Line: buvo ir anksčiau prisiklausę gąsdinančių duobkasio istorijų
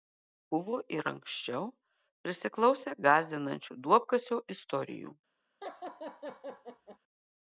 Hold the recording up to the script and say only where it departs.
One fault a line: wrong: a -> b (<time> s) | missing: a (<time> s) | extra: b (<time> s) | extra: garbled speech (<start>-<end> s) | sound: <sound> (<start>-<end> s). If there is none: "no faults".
sound: laugh (5.6-7.0 s)